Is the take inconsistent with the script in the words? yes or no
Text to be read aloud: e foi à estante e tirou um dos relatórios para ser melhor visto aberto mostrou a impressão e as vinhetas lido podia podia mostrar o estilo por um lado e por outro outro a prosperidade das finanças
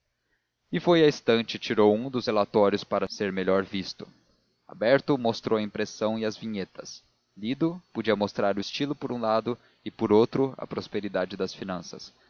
yes